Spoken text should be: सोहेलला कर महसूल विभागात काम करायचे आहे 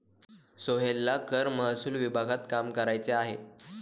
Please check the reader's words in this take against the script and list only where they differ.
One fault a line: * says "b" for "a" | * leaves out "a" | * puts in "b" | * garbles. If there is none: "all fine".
all fine